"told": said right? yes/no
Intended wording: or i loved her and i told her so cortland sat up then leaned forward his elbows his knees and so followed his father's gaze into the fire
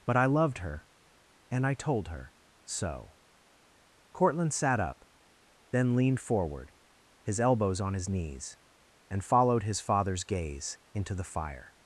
yes